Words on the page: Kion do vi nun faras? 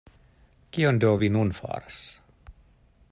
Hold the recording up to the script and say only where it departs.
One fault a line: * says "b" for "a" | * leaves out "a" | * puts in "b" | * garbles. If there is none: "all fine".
all fine